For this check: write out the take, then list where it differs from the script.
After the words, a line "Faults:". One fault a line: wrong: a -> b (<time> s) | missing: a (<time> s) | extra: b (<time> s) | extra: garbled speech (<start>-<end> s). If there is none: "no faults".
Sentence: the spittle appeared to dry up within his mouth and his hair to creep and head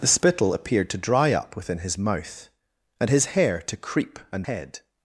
the spittle appeared to dry up within his mouth and his hair to creep and head
Faults:
no faults